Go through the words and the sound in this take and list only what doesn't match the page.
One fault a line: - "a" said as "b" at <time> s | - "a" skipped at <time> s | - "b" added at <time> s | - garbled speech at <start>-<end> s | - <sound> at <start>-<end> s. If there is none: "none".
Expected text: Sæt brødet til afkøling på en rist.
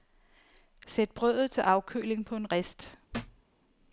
- thud at 3.1-3.4 s